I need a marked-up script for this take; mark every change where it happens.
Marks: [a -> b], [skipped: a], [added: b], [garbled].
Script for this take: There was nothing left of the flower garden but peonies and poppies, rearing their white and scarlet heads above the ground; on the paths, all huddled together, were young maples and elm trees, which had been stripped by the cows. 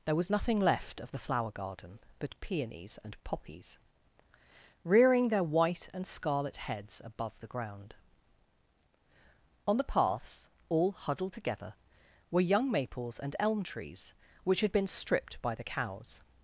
There was nothing left of the flower garden but peonies and poppies, rearing their white and scarlet heads above the ground; on the paths, all huddled together, were young maples and elm trees, which had been stripped by the cows.